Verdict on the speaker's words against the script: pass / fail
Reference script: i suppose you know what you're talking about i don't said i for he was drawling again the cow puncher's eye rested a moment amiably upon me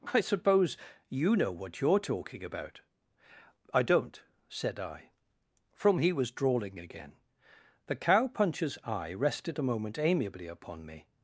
fail